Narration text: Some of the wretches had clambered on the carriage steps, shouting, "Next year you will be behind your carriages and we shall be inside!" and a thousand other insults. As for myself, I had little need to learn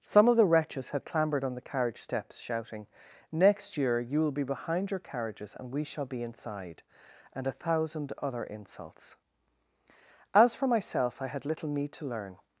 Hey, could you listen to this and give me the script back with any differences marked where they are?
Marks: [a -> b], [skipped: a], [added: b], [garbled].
Some of the wretches had clambered on the carriage steps, shouting, "Next year you will be behind your carriages and we shall be inside!" and a thousand other insults. As for myself, I had little need to learn